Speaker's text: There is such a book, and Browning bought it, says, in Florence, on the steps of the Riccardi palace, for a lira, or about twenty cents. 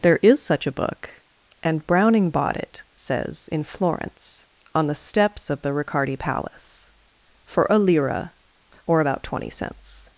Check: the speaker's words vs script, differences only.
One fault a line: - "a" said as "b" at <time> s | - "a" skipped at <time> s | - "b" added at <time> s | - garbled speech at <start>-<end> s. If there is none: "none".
none